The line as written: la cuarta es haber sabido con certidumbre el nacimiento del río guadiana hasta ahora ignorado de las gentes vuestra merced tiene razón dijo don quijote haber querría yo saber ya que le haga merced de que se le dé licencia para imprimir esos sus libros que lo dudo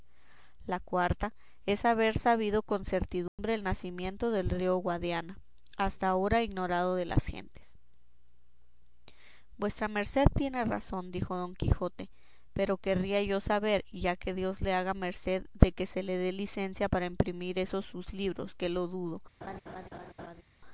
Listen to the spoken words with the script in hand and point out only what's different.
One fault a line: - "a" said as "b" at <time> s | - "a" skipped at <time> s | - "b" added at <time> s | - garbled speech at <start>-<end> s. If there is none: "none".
- "haber" said as "pero" at 12.5 s
- "dios" added at 14.3 s